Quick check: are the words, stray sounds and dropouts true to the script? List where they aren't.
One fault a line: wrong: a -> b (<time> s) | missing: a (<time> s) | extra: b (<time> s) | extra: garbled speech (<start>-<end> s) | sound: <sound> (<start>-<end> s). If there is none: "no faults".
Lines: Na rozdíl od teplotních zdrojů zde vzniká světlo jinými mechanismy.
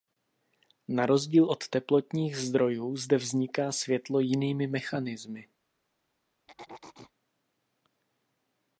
sound: throat clearing (6.5-7.1 s)